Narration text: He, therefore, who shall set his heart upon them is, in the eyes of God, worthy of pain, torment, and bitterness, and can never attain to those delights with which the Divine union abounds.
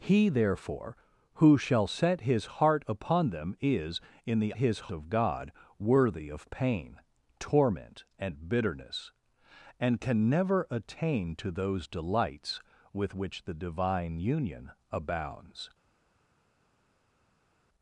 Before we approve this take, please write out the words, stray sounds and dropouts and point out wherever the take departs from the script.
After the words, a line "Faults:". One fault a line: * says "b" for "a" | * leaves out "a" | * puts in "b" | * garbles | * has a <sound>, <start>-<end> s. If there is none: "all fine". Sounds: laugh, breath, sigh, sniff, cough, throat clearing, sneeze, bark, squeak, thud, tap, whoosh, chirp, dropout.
He, therefore, who shall set his heart upon them is, in the his of God, worthy of pain, torment, and bitterness, and can never attain to those delights with which the Divine union abounds.
Faults:
* says "his" for "eyes"